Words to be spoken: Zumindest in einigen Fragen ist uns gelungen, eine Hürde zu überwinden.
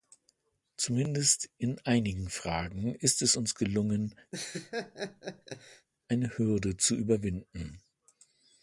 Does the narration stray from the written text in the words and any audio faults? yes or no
yes